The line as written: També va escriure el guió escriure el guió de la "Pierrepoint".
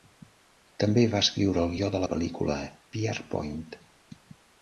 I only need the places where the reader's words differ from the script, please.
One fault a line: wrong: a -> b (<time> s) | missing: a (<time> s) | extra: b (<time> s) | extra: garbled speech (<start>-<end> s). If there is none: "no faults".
missing: escriure el guió (1.9 s)
extra: pel·lícula (2.1 s)